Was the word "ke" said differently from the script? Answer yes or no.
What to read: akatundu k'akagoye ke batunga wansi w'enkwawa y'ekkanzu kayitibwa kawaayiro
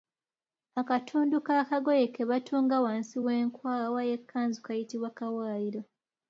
no